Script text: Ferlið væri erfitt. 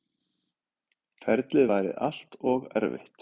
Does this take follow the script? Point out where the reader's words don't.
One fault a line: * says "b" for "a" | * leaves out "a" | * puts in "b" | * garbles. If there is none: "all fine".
* puts in "allt og"